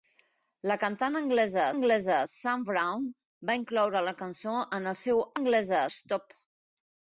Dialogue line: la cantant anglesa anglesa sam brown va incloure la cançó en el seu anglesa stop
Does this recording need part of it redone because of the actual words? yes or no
no